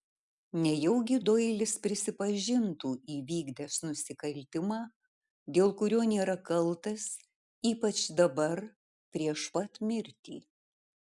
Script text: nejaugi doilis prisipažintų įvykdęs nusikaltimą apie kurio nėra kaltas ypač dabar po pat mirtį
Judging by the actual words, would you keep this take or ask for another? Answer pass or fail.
fail